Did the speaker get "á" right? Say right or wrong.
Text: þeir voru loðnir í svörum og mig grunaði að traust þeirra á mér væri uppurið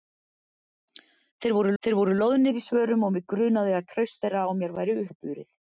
right